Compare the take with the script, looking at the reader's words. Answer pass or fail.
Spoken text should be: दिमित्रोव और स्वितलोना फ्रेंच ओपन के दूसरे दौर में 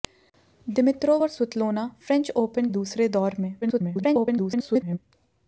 fail